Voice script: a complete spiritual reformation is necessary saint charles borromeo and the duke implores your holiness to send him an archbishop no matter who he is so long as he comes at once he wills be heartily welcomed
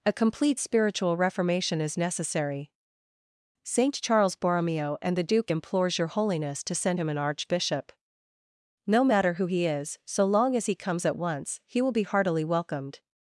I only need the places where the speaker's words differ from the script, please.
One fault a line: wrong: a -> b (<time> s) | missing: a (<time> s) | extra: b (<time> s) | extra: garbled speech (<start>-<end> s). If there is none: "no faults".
wrong: wills -> will (11.8 s)